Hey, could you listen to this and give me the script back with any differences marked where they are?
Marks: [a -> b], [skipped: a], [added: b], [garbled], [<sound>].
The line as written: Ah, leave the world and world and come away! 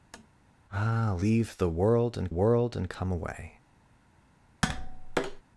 [tap] Ah, leave the world and world and come away! [tap]